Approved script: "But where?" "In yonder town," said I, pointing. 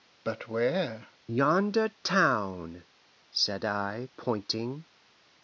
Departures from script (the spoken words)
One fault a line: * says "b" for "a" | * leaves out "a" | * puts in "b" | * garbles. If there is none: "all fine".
* leaves out "In"